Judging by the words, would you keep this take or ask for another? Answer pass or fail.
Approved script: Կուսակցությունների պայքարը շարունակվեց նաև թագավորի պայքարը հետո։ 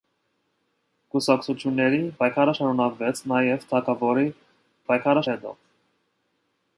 pass